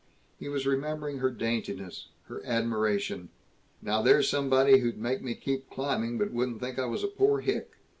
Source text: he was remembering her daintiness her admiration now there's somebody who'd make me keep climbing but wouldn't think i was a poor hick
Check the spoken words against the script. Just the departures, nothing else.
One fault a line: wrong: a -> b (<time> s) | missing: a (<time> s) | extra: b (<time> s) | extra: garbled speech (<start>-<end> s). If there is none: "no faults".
no faults